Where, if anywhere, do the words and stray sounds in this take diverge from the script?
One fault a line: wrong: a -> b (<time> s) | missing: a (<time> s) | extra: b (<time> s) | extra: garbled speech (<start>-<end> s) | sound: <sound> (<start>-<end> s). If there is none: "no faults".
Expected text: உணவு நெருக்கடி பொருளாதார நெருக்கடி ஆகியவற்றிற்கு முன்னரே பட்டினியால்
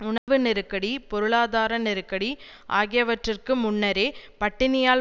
sound: dropout (0.2-0.3 s)